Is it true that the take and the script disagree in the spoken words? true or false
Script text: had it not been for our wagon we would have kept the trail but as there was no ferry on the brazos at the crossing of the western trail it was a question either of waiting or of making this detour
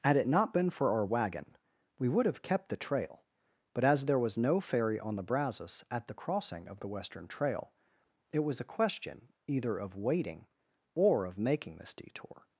false